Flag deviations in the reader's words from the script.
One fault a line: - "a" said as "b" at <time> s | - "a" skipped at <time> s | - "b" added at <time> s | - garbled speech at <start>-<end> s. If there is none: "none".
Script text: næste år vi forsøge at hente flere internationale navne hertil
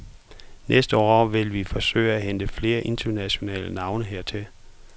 - "vil" added at 1.2 s